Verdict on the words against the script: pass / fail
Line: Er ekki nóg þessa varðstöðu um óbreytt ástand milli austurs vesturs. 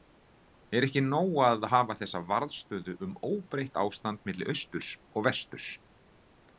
fail